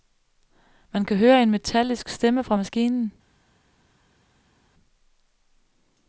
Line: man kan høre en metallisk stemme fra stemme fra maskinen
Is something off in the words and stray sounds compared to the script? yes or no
yes